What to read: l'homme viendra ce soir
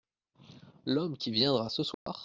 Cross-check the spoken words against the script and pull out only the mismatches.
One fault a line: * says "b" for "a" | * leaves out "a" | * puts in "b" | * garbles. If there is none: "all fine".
* puts in "qui"